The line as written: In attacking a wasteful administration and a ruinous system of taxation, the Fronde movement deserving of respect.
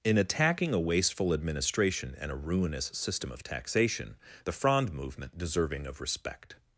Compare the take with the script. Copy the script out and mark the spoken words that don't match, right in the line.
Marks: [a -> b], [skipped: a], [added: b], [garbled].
In attacking a wasteful administration and a ruinous system of taxation, the Fronde movement deserving of respect.